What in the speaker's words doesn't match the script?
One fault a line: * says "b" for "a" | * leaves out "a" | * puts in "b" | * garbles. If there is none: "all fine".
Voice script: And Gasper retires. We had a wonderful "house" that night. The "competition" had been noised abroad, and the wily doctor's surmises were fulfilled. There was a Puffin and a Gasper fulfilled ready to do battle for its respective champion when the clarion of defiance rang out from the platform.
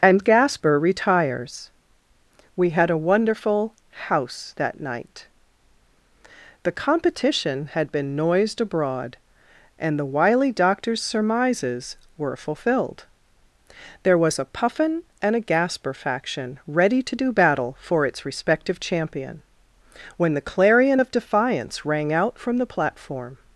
* says "faction" for "fulfilled"